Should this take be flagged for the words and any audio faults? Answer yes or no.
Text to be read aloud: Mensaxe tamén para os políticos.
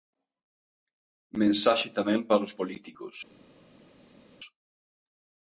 no